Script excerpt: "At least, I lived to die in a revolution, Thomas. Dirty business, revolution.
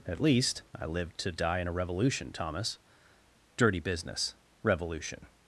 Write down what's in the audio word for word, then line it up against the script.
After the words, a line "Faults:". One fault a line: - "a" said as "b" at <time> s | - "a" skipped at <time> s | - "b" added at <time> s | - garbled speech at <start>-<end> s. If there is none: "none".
"At least, I lived to die in a revolution, Thomas. Dirty business, revolution.
Faults:
none